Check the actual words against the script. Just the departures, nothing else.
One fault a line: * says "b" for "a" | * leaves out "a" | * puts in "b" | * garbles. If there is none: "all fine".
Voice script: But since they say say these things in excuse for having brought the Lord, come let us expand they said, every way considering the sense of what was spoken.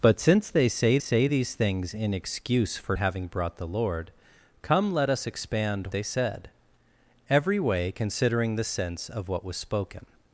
all fine